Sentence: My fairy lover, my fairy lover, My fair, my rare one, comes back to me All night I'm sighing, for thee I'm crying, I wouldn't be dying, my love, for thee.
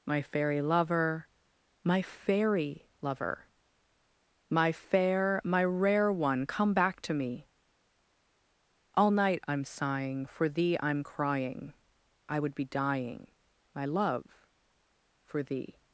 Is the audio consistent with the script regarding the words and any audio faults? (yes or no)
no